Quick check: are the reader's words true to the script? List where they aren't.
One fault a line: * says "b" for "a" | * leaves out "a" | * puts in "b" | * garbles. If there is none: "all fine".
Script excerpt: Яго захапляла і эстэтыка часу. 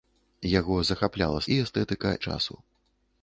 all fine